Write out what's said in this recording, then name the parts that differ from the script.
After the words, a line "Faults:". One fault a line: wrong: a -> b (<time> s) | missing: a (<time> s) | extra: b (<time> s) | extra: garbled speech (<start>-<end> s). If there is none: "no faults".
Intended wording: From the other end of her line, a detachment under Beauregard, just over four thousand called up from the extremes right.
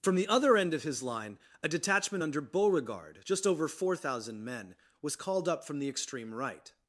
From the other end of his line, a detachment under Beauregard, just over four thousand men, was called up from the extreme right.
Faults:
wrong: her -> his (0.8 s)
extra: men was (4.4 s)
wrong: extremes -> extreme (5.9 s)